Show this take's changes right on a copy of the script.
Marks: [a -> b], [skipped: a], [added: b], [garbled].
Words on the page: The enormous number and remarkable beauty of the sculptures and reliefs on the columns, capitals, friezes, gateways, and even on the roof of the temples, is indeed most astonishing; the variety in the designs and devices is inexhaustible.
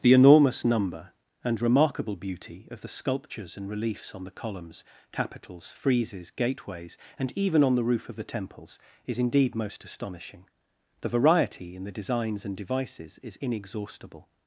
The enormous number and remarkable beauty of the sculptures and reliefs on the columns, capitals, friezes, gateways, and even on the roof of the temples, is indeed most astonishing; the variety in the designs and devices is inexhaustible.